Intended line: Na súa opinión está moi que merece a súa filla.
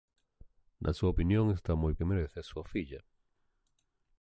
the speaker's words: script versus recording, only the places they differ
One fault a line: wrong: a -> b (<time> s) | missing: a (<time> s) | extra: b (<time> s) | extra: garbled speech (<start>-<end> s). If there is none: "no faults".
no faults